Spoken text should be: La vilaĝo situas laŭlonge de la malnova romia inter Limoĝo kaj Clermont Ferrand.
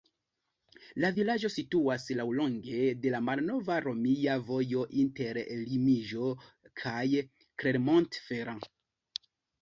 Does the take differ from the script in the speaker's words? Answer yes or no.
yes